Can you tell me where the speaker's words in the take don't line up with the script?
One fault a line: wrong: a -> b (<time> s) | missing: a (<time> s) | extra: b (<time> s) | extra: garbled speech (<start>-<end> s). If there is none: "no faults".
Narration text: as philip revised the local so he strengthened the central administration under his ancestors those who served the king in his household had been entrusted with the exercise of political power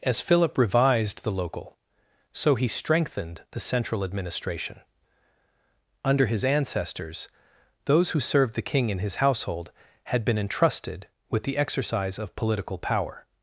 no faults